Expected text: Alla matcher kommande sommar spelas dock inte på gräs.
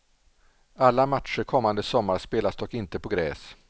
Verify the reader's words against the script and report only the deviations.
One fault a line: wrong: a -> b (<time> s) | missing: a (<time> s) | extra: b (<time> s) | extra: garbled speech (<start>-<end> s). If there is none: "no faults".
no faults